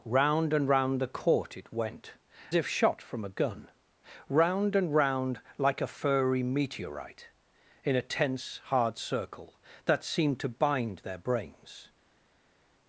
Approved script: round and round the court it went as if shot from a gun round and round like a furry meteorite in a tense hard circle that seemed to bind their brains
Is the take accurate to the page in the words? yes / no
no